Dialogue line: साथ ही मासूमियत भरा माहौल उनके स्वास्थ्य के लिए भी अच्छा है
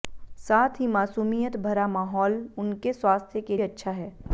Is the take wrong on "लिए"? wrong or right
wrong